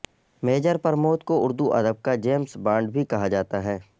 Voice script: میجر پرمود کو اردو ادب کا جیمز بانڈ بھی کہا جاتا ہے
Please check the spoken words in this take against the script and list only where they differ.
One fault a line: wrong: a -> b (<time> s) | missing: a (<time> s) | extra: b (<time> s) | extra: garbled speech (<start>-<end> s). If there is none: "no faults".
no faults